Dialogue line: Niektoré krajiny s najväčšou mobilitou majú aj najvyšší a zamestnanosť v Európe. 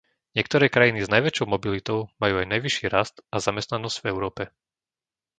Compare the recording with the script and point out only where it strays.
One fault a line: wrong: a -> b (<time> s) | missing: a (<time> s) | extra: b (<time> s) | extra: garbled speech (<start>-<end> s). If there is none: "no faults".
extra: rast (2.9 s)